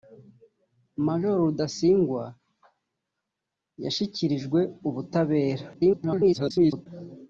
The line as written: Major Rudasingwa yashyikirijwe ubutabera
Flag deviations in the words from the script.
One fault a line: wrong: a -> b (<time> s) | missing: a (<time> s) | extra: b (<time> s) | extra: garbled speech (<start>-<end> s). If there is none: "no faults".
extra: garbled speech (5.7-6.9 s)